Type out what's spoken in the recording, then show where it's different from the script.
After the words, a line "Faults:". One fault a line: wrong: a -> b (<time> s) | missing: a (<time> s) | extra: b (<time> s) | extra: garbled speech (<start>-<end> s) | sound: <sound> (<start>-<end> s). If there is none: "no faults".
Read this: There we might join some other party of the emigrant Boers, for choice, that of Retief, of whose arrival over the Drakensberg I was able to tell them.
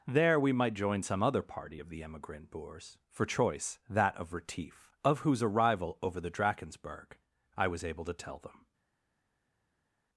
There we might join some other party of the emigrant Boers, for choice, that of Retief, of whose arrival over the Drakensberg I was able to tell them.
Faults:
no faults